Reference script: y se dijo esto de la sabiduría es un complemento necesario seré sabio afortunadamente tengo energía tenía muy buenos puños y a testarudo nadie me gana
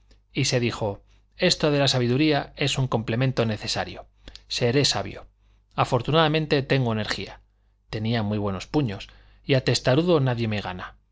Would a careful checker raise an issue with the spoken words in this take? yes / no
no